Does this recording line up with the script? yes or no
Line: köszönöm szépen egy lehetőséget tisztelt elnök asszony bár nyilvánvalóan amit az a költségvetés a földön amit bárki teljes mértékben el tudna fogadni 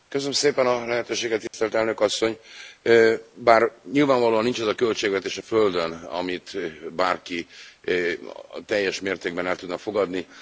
no